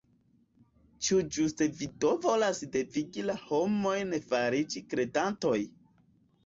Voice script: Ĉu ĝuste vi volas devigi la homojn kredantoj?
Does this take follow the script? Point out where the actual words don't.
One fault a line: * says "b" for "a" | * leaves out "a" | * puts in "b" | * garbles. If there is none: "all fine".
* puts in "do"
* puts in "fariĝi"